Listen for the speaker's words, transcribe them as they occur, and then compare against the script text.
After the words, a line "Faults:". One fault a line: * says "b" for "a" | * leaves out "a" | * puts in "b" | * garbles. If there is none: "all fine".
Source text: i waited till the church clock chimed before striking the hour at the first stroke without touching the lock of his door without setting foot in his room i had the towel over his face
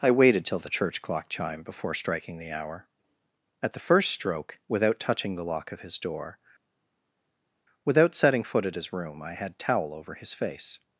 i waited till the church clock chimed before striking the hour at the first stroke without touching the lock of his door without setting foot at his room i had towel over his face
Faults:
* says "at" for "in"
* leaves out "the"